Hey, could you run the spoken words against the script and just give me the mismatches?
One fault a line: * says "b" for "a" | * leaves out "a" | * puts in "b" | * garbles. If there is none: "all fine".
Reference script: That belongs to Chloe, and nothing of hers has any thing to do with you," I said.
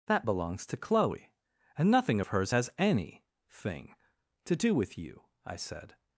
all fine